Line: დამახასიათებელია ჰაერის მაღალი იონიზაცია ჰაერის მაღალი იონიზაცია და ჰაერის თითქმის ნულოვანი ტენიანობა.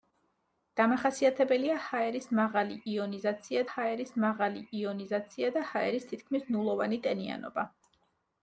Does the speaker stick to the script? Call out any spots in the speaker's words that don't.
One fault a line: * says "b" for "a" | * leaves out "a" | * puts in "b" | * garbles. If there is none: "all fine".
all fine